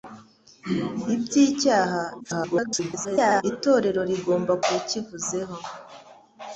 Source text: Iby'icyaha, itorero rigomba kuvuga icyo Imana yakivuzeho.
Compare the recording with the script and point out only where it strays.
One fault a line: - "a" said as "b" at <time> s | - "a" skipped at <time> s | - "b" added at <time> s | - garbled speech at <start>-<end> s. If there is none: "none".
- garbled speech at 2.2-3.4 s
- "kuvuga icyo Imana" skipped at 4.5 s